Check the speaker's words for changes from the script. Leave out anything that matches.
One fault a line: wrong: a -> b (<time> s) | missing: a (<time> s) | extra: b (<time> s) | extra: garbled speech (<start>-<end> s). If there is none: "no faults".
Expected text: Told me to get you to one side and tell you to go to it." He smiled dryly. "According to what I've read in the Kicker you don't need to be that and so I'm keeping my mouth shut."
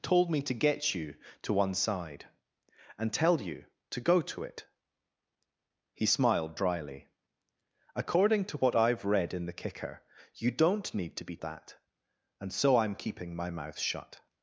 no faults